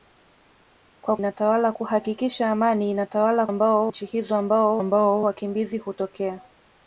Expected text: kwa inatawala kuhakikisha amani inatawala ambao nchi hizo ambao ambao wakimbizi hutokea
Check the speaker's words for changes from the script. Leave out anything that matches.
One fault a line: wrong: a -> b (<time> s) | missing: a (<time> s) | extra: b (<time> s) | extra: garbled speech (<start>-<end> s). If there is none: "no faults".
no faults